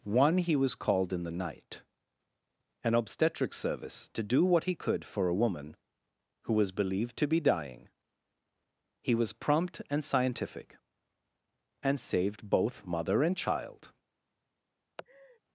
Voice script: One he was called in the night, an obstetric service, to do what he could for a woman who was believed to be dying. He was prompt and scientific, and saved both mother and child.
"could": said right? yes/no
yes